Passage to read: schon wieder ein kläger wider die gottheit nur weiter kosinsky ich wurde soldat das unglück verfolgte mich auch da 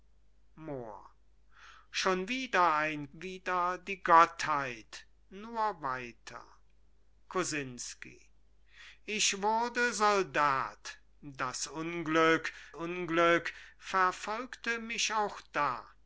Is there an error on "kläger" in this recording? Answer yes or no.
yes